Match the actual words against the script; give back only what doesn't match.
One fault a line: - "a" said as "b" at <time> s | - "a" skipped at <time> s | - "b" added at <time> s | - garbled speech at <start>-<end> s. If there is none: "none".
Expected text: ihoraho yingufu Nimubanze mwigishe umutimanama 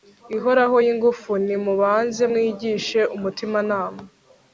none